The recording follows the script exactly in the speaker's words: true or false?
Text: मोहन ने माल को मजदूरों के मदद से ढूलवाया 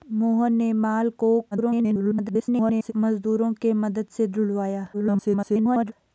false